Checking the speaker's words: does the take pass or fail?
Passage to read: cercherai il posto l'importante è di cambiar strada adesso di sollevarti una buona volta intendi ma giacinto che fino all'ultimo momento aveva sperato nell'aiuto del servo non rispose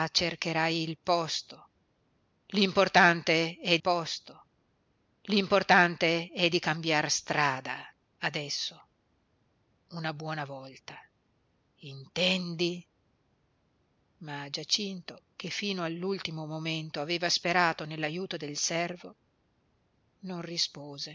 fail